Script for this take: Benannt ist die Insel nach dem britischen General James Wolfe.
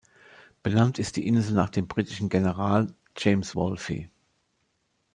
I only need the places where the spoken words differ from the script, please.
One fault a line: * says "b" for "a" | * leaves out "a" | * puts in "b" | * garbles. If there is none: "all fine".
all fine